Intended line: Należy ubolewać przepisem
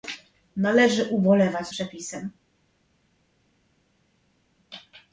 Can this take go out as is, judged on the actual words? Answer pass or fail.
pass